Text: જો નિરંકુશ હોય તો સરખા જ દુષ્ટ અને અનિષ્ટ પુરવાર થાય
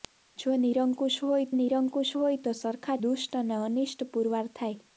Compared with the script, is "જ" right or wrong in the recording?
wrong